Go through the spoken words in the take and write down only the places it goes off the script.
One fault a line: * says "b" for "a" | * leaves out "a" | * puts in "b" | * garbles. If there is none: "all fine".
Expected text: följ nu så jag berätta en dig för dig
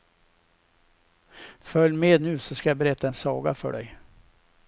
* puts in "med"
* puts in "ska"
* says "saga" for "dig"